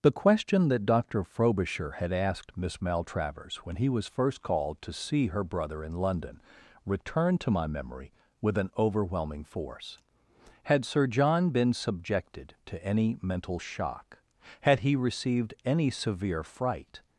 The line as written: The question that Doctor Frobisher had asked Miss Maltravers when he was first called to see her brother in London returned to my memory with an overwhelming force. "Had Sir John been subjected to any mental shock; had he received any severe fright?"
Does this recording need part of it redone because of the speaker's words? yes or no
no